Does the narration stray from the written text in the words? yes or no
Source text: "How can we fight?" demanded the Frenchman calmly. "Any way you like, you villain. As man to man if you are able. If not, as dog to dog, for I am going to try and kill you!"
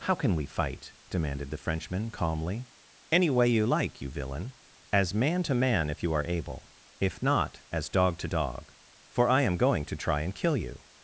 no